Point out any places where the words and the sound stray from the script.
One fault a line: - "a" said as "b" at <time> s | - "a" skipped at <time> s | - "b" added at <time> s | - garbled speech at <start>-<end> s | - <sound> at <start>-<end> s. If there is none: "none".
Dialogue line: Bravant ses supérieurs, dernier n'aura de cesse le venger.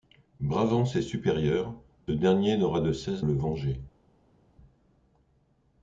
none